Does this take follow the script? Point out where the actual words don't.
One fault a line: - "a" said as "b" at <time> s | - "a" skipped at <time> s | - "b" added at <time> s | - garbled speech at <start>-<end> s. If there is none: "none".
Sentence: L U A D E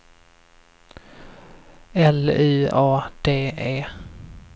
none